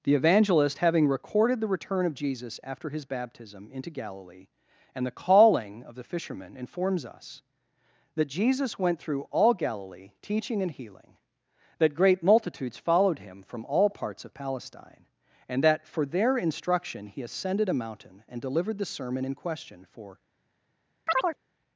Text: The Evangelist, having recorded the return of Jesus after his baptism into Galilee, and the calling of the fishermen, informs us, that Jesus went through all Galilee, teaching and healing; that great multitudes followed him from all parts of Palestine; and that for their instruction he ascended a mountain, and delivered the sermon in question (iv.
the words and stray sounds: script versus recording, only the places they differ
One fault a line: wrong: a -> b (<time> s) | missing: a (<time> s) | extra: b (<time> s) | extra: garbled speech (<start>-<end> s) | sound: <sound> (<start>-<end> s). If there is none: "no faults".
wrong: iv -> for (19.8 s)
sound: chirp (21.1-21.4 s)